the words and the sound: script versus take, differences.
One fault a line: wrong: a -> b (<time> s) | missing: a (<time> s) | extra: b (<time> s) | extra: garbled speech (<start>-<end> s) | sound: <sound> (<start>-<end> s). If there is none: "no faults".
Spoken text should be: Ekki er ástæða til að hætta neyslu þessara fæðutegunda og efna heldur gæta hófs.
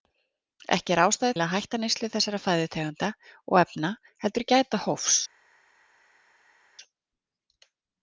missing: til (1.4 s)